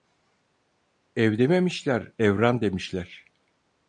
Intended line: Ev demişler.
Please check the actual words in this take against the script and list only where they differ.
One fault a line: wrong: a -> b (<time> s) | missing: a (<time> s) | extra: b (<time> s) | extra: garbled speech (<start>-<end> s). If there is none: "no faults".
extra: dememişler evran (1.4 s)